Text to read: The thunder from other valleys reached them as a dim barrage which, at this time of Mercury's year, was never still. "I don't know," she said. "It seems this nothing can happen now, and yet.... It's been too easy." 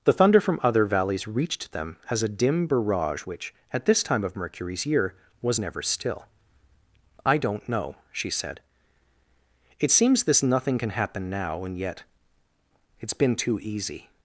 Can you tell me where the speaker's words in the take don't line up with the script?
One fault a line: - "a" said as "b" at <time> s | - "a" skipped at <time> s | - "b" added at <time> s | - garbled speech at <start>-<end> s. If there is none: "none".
none